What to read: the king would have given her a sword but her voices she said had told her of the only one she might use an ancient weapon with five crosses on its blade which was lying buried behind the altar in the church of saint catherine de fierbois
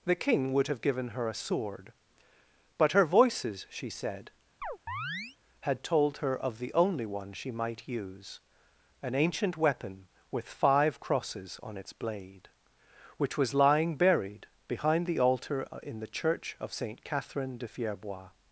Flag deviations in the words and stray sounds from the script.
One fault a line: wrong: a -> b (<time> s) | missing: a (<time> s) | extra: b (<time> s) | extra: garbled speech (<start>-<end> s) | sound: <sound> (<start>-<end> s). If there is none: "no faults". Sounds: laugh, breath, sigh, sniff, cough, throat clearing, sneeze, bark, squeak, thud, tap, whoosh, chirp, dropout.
sound: chirp (4.6-5.4 s)